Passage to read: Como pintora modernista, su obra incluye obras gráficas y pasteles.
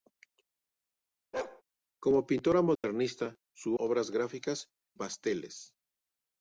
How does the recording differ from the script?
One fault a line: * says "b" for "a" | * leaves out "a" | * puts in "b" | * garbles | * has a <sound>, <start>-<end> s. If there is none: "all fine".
* has a bark, 1.3-1.6 s
* has a dropout, 2.8-2.8 s
* leaves out "obra incluye"
* leaves out "y"